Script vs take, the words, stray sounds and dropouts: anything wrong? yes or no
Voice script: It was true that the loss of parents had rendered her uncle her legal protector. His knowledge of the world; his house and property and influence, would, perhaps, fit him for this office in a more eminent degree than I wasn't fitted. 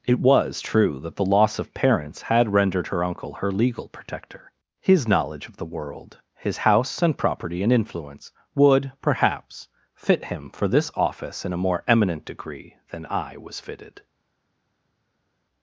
yes